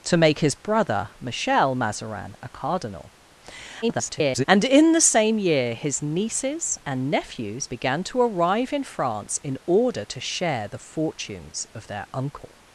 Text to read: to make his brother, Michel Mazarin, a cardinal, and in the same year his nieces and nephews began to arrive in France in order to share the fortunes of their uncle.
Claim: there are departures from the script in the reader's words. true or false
true